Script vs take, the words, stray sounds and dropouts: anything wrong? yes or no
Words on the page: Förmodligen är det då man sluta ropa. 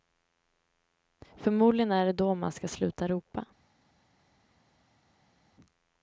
yes